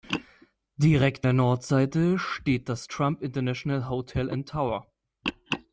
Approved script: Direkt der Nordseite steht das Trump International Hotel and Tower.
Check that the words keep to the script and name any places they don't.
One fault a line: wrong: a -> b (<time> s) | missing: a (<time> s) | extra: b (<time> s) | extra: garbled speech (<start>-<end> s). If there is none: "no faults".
no faults